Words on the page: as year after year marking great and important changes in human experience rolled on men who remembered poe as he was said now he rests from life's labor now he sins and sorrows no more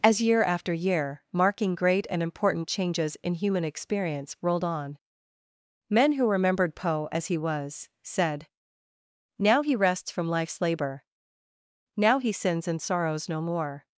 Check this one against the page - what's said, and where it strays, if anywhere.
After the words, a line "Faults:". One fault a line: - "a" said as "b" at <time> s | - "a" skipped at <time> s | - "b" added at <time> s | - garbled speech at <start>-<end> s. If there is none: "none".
as year after year marking great and important changes in human experience rolled on men who remembered poe as he was said now he rests from life's labor now he sins and sorrows no more
Faults:
none